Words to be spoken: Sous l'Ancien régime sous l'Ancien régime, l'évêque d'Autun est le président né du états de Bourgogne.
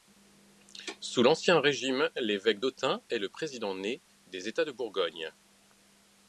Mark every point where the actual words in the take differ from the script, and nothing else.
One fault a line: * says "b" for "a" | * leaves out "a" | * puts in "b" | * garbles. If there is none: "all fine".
* leaves out "sous l'Ancien régime"
* says "des" for "du"